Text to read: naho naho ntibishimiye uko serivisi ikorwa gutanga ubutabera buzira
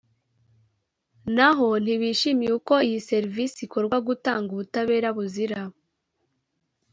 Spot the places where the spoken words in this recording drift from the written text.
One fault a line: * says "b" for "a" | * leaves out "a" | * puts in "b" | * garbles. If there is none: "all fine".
* leaves out "naho"
* puts in "iyi"